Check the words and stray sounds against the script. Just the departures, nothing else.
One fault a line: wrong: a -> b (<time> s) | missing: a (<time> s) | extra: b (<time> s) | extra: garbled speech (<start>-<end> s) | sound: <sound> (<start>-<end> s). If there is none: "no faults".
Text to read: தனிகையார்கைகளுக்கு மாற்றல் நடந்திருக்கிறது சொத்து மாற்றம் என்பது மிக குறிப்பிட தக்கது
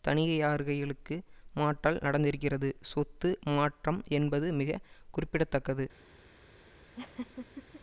sound: laugh (7.0-7.8 s)